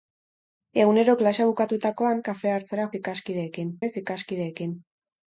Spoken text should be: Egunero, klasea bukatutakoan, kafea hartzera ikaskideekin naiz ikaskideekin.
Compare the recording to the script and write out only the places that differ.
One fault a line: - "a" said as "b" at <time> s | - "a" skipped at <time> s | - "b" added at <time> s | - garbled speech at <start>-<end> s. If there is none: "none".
none